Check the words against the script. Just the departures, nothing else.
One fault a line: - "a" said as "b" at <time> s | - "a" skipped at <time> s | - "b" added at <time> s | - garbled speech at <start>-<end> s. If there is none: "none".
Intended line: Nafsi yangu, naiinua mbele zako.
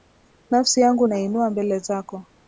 none